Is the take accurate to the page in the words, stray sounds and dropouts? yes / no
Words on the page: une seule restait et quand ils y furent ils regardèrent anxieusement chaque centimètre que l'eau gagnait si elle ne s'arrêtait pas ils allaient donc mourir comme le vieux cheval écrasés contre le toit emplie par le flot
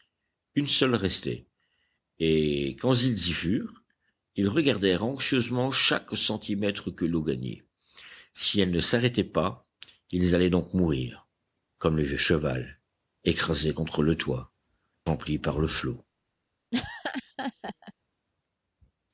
no